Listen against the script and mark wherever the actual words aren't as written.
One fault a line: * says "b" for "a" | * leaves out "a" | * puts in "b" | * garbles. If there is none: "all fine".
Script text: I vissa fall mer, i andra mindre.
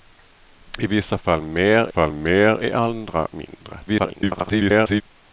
* puts in "fall mer"
* garbles